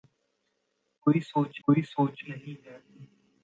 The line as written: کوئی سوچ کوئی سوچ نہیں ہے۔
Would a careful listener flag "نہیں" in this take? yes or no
no